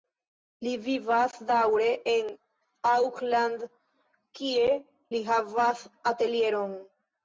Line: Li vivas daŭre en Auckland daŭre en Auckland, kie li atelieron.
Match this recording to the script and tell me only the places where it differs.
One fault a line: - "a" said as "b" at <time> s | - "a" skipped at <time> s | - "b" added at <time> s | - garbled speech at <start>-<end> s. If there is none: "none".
- "daŭre en Auckland" skipped at 3.7 s
- "havas" added at 5.3 s